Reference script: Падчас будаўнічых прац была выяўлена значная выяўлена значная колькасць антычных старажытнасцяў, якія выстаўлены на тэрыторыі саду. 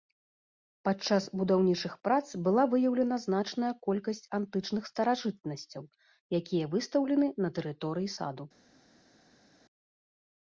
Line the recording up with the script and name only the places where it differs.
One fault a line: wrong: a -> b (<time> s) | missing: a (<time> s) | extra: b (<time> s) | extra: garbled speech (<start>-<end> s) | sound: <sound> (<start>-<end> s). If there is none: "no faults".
missing: выяўлена значная (3.7 s)